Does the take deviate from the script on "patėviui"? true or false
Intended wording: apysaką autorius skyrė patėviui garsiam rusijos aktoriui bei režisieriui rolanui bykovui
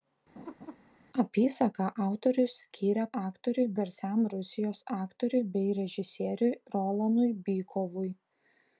true